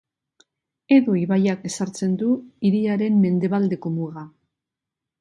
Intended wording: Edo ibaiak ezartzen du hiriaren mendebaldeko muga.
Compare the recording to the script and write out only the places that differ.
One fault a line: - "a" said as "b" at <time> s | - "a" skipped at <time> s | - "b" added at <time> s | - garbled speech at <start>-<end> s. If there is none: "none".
none